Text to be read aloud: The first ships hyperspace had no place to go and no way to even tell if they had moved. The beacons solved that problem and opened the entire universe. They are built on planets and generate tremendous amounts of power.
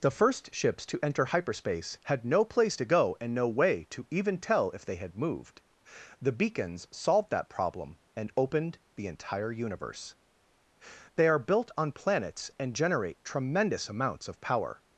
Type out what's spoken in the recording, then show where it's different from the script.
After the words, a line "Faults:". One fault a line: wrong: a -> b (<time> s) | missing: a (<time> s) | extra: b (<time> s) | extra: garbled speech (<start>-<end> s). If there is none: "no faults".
The first ships to enter hyperspace had no place to go and no way to even tell if they had moved. The beacons solved that problem and opened the entire universe. They are built on planets and generate tremendous amounts of power.
Faults:
extra: to enter (0.9 s)